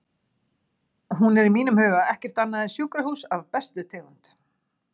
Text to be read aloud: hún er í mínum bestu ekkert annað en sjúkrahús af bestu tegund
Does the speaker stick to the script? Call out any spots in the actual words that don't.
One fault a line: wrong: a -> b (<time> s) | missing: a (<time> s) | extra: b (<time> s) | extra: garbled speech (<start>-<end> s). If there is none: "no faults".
wrong: bestu -> huga (1.8 s)